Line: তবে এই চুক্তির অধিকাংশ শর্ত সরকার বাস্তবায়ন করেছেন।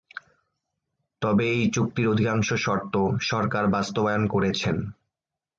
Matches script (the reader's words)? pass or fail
pass